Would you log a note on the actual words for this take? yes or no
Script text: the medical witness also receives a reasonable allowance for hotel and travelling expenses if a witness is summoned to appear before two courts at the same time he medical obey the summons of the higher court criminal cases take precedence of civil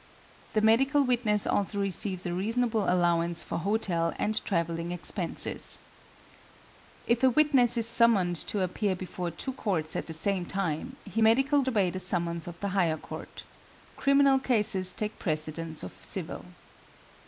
no